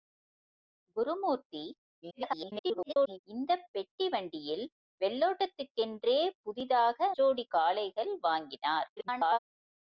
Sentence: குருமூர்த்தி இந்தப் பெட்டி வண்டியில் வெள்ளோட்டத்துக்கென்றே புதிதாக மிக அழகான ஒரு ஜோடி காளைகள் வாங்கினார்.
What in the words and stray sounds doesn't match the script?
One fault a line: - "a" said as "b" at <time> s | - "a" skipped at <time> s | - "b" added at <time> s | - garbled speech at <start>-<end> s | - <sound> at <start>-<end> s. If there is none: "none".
- garbled speech at 2.0-3.2 s
- "மிக அழகான ஒரு" skipped at 7.0 s
- garbled speech at 9.0-9.4 s